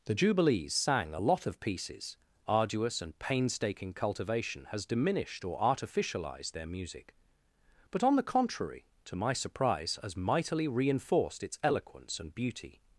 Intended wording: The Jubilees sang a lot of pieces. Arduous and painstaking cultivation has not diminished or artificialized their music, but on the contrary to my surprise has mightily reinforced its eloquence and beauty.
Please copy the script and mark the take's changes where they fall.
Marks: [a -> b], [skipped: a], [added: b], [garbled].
The Jubilees sang a lot of pieces. Arduous and painstaking cultivation has [skipped: not] diminished or artificialized their music, but on the contrary to my surprise has mightily reinforced its eloquence and beauty.